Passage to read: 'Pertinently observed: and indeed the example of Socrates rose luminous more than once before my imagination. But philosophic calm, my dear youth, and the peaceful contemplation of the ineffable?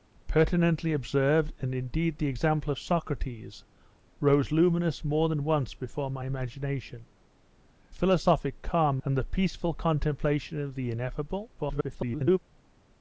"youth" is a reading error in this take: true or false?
true